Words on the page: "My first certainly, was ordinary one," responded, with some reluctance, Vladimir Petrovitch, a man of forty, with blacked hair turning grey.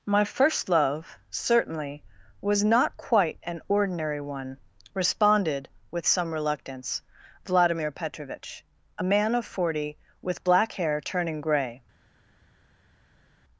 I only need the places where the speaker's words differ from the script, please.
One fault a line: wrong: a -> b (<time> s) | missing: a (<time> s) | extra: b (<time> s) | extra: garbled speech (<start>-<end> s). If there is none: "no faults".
extra: love (0.7 s)
extra: not quite an (2.6 s)
wrong: blacked -> black (10.5 s)